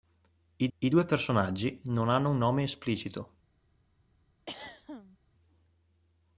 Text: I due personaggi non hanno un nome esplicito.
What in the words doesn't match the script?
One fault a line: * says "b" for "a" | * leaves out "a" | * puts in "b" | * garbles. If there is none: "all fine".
* puts in "I"